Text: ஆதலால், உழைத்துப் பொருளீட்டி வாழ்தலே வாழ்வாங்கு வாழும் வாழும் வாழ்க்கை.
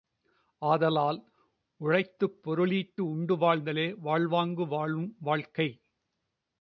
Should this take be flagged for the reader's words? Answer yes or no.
yes